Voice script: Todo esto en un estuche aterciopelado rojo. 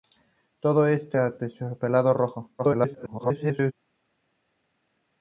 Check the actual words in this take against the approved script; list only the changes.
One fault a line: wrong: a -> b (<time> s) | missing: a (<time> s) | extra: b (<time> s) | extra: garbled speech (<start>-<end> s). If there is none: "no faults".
missing: en un estuche (1.2 s)
extra: garbled speech (2.6-3.7 s)